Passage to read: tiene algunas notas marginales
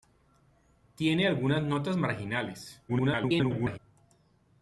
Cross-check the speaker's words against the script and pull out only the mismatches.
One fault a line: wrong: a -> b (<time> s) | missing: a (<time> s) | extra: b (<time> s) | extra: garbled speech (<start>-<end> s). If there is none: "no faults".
extra: garbled speech (2.9-3.8 s)